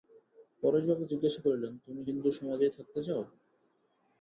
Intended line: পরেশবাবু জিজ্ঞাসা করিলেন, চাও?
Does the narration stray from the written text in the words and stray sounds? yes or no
yes